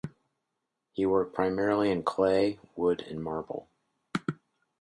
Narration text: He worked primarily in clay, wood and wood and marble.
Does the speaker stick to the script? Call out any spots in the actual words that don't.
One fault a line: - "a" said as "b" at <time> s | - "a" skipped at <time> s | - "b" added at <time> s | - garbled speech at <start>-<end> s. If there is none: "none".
- "wood and" skipped at 3.2 s